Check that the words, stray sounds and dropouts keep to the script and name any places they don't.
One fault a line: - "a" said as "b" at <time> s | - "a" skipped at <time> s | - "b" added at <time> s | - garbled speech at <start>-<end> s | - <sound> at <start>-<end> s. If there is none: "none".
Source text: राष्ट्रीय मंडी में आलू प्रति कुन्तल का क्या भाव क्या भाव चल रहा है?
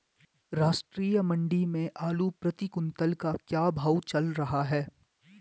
- "क्या भाव" skipped at 4.0 s